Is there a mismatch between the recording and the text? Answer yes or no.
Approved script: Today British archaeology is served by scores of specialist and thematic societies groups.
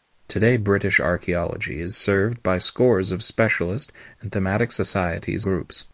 no